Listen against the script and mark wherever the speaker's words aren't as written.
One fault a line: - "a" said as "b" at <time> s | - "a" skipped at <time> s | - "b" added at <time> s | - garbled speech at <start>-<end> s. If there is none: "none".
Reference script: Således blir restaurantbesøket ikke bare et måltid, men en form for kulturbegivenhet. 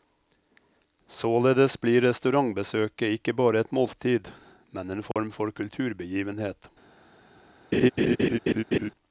none